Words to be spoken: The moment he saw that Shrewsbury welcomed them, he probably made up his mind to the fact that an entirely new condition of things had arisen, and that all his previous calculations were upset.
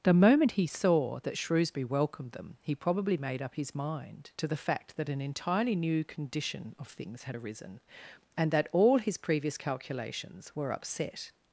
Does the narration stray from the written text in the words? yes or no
no